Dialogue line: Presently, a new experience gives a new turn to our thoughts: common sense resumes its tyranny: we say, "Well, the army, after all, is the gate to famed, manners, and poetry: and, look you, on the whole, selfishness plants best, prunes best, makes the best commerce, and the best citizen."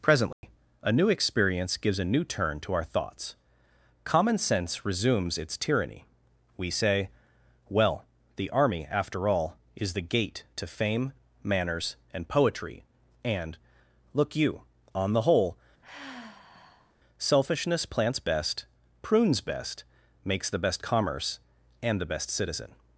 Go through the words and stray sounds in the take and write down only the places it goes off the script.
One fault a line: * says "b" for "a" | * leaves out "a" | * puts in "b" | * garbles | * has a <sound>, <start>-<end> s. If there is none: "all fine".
* has a dropout, 0.3-0.4 s
* says "fame" for "famed"
* has a sigh, 15.8-16.9 s